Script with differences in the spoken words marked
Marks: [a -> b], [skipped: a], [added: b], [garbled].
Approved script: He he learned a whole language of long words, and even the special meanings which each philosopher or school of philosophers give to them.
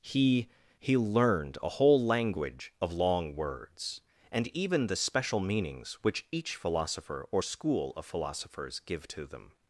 He he learned a whole language of long words, and even the special meanings which each philosopher or school of philosophers give to them.